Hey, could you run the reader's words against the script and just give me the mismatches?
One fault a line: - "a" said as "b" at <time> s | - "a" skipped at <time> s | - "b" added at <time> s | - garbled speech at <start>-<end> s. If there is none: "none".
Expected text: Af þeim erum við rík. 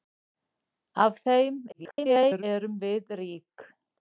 - garbled speech at 1.7-2.4 s